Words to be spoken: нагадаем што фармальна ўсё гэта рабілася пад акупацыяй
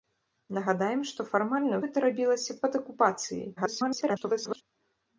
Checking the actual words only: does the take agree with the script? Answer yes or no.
no